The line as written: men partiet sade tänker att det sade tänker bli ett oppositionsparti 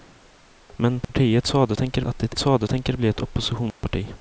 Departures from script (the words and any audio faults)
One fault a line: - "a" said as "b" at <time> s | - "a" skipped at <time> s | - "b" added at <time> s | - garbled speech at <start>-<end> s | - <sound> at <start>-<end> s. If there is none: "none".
- dropout at 1.0-1.1 s
- dropout at 3.7-3.8 s